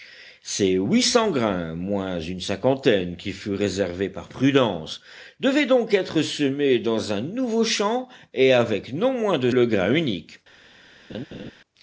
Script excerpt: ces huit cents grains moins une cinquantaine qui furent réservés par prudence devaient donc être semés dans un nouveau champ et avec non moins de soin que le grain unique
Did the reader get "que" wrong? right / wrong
wrong